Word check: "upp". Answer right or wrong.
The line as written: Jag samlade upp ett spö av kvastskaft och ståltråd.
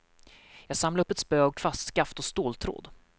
right